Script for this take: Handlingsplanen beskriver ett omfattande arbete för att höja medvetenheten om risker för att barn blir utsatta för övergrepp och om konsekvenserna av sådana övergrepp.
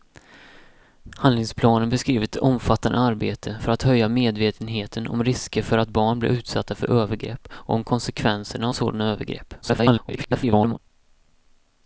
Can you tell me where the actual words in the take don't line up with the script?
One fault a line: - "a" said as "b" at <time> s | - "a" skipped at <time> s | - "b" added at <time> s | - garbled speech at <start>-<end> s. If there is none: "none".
- garbled speech at 9.6-10.8 s